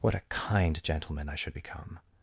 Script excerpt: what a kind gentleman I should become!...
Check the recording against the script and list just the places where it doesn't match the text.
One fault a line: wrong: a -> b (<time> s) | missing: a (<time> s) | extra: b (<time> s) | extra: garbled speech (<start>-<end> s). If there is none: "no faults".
no faults